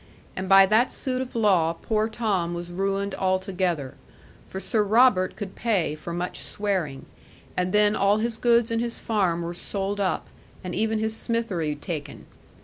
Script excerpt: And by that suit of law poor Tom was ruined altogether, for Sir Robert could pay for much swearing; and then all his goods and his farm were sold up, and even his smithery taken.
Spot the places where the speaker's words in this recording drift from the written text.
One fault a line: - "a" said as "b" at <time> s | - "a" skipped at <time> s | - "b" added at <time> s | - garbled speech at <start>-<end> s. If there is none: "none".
none